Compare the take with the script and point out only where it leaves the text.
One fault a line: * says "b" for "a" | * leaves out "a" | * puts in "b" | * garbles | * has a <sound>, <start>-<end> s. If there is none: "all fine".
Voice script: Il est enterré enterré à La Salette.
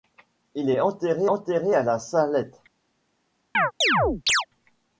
* has a chirp, 3.5-4.5 s